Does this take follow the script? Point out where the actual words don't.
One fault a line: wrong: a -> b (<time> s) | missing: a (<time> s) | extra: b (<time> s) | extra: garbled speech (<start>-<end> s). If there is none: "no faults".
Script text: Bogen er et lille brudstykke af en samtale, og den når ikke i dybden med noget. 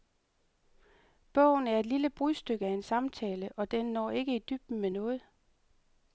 no faults